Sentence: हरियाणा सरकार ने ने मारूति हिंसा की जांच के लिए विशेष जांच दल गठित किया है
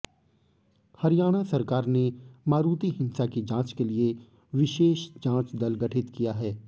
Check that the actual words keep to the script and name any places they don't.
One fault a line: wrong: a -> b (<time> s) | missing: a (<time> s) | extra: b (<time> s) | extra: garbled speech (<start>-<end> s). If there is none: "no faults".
missing: ने (2.0 s)